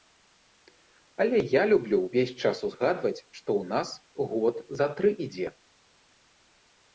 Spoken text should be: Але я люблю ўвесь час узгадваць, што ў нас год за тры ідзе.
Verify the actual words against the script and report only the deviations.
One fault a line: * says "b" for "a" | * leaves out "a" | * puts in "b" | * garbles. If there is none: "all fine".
all fine